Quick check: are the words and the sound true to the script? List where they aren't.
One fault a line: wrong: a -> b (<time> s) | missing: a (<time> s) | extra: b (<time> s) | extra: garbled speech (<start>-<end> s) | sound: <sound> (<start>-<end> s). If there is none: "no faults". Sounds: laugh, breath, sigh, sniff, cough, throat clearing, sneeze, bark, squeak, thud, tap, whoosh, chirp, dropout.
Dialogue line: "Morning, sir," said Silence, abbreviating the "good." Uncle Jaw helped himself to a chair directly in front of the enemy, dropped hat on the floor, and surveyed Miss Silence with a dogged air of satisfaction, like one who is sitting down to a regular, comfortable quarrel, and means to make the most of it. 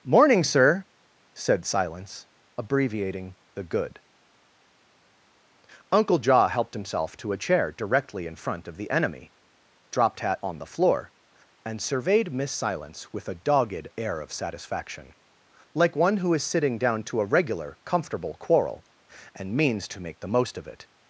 no faults